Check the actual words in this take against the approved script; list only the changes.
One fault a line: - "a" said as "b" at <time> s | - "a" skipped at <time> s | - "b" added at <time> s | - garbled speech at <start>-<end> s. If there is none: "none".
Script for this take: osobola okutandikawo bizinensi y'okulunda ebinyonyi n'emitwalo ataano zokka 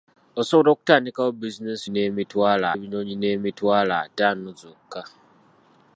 - "y'okulunda" said as "n'emitwalo" at 1.9 s